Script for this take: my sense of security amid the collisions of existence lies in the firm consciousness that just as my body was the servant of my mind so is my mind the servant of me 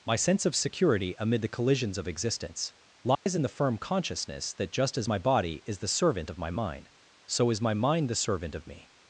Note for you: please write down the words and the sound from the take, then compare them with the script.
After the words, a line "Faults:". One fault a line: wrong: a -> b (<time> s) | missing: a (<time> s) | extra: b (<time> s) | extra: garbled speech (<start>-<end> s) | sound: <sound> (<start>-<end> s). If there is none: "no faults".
my sense of security amid the collisions of existence lies in the firm consciousness that just as my body is the servant of my mind so is my mind the servant of me
Faults:
sound: dropout (3.1-3.3 s)
wrong: was -> is (5.6 s)